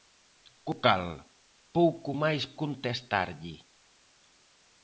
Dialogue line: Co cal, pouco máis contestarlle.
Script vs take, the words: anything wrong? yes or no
no